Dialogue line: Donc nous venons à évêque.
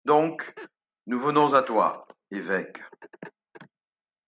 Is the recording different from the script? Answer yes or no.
yes